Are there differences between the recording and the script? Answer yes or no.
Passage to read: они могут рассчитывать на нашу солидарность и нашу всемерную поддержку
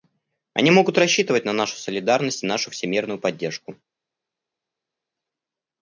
no